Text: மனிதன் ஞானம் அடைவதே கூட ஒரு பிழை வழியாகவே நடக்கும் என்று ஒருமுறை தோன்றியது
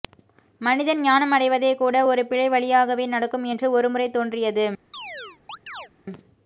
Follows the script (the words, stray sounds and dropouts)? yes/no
no